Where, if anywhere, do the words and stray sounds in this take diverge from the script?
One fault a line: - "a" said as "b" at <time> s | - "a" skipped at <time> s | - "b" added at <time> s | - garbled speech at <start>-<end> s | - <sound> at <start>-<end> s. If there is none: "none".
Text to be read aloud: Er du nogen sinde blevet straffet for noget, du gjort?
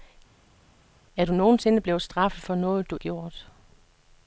none